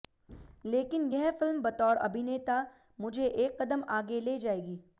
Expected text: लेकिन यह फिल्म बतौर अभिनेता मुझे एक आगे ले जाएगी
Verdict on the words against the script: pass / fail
fail